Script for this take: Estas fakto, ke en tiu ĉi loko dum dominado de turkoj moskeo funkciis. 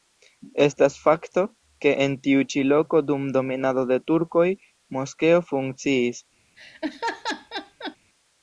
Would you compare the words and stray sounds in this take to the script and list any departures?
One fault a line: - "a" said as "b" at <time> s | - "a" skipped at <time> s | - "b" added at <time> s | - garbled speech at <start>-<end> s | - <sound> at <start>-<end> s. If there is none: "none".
- laugh at 6.6-8.0 s